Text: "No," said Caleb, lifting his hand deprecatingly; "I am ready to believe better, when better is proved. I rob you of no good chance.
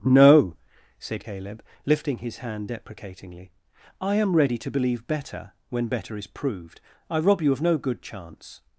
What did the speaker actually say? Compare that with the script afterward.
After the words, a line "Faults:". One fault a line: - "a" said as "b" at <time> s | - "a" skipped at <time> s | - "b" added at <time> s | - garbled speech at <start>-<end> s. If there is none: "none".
"No," said Caleb, lifting his hand deprecatingly; "I am ready to believe better, when better is proved. I rob you of no good chance.
Faults:
none